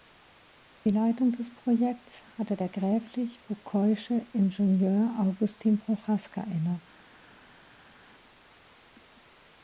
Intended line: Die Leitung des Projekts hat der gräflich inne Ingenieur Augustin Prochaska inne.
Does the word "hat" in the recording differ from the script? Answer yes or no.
yes